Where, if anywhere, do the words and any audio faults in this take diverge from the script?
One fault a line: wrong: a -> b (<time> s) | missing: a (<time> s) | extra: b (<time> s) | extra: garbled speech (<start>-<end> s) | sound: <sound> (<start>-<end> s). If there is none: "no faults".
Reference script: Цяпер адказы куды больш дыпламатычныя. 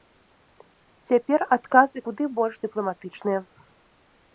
no faults